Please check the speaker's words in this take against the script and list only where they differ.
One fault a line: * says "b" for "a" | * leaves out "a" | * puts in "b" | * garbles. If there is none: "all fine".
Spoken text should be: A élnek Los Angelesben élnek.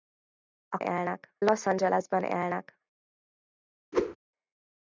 all fine